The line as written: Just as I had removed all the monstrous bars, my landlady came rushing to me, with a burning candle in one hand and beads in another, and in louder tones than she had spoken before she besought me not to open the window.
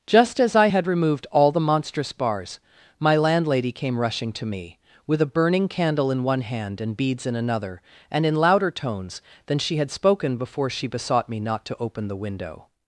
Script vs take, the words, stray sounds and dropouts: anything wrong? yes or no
no